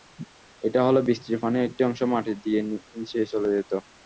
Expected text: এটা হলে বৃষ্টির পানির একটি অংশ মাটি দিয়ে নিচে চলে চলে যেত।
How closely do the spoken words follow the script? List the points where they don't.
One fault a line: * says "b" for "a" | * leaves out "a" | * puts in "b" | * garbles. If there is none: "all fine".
* leaves out "চলে"